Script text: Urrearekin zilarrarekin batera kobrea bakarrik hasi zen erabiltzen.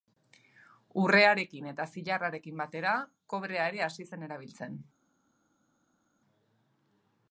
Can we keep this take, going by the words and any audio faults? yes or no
no